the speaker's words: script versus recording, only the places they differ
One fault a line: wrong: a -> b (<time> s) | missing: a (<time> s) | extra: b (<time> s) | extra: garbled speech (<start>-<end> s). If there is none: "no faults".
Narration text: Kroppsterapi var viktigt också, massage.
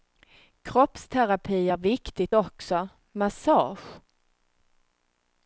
wrong: var -> är (1.7 s)